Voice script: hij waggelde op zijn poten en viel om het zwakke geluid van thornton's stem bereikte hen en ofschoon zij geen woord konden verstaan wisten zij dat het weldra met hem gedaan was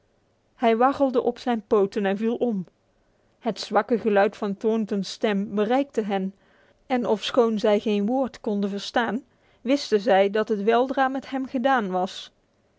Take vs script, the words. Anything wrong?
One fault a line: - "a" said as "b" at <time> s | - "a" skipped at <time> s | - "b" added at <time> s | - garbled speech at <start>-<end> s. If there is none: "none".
none